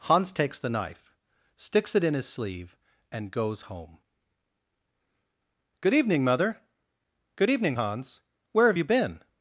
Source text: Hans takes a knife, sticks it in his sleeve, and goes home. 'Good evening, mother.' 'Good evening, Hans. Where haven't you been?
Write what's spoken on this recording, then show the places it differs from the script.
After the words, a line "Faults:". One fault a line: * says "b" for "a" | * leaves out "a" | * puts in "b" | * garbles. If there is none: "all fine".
Hans takes the knife, sticks it in his sleeve, and goes home. 'Good evening, mother.' 'Good evening, Hans. Where have you been?
Faults:
* says "the" for "a"
* says "have" for "haven't"